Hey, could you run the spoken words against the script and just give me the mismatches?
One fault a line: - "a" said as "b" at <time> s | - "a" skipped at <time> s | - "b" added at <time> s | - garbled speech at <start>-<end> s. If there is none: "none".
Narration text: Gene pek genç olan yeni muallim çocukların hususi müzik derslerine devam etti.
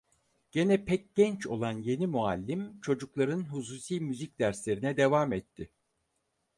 none